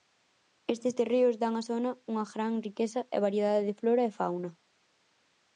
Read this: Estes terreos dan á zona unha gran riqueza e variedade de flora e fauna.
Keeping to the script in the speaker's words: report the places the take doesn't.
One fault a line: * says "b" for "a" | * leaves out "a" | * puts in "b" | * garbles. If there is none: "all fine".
all fine